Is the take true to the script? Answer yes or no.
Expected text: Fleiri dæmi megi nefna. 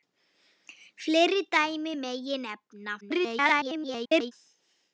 no